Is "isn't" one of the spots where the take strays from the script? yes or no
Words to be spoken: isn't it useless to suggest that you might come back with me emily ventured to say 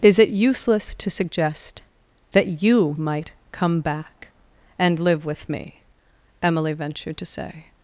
yes